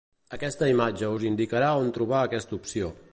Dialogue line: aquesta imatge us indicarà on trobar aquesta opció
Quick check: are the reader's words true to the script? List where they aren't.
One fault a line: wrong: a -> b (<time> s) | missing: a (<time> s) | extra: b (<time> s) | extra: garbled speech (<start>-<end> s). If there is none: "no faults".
no faults